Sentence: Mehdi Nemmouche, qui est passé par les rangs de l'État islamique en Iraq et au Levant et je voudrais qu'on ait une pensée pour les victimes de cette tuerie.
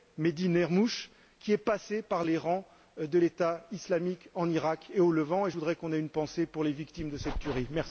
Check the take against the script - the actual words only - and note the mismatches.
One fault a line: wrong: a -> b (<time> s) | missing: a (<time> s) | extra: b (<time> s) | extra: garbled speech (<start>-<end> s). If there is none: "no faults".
no faults